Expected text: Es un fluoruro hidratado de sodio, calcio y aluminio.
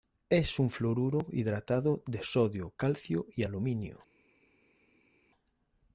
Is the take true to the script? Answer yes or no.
yes